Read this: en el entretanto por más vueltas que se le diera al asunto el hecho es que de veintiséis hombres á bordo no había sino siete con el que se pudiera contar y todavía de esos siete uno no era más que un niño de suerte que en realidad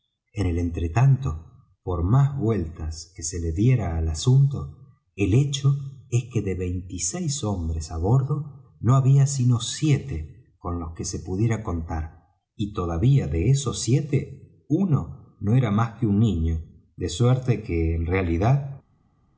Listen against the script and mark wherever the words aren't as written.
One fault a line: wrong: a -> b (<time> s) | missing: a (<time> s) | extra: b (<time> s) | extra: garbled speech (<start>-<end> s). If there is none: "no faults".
wrong: el -> los (10.8 s)